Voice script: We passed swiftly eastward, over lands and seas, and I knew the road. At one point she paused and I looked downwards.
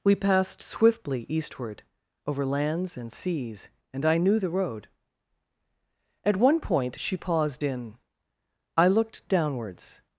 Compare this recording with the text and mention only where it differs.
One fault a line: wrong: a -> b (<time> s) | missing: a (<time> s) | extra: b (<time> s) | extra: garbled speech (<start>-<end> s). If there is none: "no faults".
wrong: and -> in (7.6 s)